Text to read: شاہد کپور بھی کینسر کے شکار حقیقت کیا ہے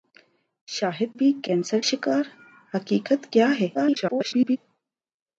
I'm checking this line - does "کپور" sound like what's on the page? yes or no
no